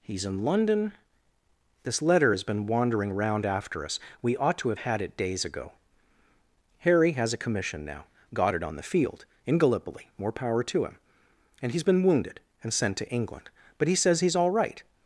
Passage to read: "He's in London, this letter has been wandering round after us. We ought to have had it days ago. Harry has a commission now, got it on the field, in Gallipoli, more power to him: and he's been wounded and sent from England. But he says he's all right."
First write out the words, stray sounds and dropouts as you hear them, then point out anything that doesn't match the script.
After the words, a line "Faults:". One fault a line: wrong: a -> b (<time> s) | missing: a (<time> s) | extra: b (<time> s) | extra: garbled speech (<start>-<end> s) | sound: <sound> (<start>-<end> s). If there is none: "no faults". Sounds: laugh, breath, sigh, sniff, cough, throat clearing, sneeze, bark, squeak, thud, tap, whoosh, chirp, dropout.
"He's in London, this letter has been wandering round after us. We ought to have had it days ago. Harry has a commission now, got it on the field, in Gallipoli, more power to him: and he's been wounded and sent to England. But he says he's all right."
Faults:
wrong: from -> to (13.0 s)